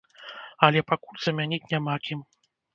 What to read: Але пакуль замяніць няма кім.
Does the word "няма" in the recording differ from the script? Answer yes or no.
no